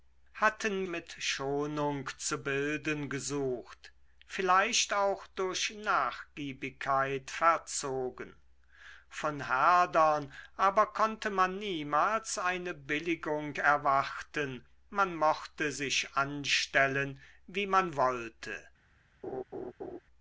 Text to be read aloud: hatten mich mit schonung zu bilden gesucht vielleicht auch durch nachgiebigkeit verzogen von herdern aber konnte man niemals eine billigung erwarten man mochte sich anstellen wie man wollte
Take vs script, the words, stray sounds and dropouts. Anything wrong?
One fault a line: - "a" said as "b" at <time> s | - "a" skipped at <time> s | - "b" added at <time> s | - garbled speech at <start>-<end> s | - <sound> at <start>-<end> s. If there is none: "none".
- "mich" skipped at 0.8 s
- laugh at 19.2-20.0 s